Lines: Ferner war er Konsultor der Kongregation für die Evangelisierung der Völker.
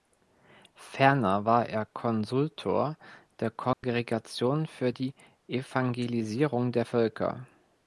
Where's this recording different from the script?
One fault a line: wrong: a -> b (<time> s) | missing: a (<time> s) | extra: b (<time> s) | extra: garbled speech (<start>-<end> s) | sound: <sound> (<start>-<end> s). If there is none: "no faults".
sound: dropout (3.7-3.8 s)